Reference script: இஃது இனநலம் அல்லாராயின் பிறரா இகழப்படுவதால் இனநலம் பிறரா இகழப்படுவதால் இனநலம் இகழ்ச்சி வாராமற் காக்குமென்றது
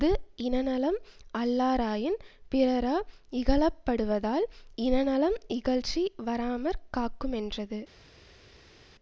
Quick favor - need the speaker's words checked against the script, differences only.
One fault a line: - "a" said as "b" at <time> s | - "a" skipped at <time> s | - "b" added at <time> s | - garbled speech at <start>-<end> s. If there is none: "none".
- "பிறரா இகழப்படுவதால் இனநலம்" skipped at 5.4 s